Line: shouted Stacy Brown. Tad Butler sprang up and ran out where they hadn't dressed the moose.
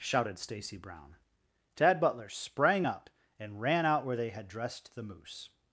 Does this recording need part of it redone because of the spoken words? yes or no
yes